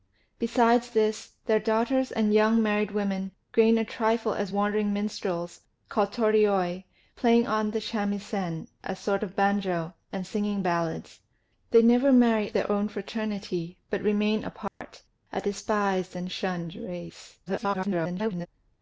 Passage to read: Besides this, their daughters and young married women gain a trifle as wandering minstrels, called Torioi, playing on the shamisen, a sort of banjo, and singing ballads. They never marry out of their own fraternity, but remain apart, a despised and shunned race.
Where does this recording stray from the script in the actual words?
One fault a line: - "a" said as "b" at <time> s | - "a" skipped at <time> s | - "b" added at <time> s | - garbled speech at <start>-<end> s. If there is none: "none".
- "out of" skipped at 12.5 s
- garbled speech at 17.5-18.5 s